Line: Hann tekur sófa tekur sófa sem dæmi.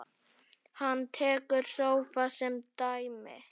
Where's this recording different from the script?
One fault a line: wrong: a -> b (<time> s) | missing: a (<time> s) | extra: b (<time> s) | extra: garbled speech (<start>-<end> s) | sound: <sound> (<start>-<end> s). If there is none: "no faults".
missing: tekur sófa (2.3 s)